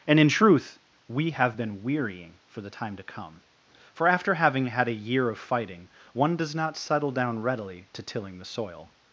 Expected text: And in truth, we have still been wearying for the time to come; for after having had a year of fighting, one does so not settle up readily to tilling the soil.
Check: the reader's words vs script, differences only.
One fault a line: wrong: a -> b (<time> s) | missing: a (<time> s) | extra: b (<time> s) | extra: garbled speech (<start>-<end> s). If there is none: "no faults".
missing: still (1.6 s)
missing: so (6.5 s)
wrong: up -> down (7.1 s)